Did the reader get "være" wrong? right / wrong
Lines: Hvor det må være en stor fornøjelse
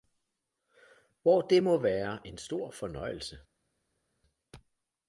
right